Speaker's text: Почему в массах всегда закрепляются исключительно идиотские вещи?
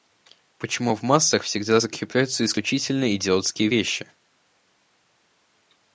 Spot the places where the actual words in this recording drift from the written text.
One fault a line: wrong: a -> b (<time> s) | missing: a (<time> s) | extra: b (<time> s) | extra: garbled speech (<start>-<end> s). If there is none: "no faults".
no faults